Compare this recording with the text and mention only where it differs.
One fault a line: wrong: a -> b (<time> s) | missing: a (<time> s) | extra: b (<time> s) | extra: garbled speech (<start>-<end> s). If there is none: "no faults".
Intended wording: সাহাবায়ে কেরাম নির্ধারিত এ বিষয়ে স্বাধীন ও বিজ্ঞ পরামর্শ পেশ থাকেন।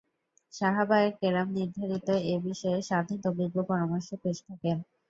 no faults